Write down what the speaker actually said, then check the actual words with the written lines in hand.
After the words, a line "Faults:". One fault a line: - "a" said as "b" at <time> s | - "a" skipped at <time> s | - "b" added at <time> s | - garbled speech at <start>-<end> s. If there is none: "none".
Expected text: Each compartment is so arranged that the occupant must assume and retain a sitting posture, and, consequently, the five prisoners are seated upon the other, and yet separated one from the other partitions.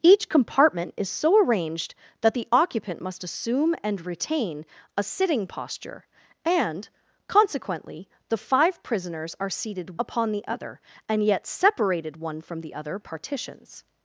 Each compartment is so arranged that the occupant must assume and retain a sitting posture, and, consequently, the five prisoners are seated upon the other, and yet separated one from the other partitions.
Faults:
none